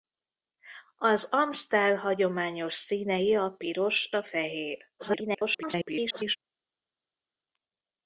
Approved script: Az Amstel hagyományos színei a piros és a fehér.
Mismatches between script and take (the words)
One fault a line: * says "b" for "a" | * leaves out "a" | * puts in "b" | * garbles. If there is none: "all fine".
* leaves out "és"
* garbles